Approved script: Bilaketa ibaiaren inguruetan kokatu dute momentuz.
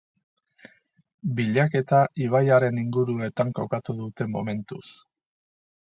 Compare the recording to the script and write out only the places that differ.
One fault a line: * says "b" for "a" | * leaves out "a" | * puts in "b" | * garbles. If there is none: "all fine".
all fine